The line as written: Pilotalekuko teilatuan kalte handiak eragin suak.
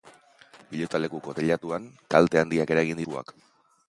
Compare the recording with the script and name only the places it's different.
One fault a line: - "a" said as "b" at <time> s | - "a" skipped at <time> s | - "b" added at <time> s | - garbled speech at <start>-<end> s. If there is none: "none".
none